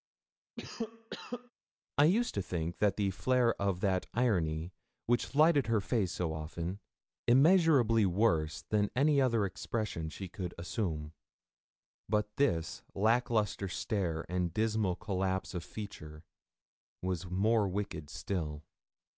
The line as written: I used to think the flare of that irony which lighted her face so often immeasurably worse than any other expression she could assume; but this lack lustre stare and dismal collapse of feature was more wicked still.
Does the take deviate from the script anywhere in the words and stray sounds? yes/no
yes